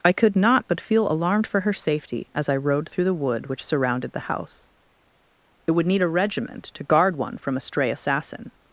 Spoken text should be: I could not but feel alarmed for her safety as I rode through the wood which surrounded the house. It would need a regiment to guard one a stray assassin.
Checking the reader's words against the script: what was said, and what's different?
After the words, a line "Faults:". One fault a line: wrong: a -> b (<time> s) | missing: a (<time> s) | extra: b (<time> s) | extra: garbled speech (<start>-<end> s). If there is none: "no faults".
I could not but feel alarmed for her safety as I rode through the wood which surrounded the house. It would need a regiment to guard one from a stray assassin.
Faults:
extra: from (7.4 s)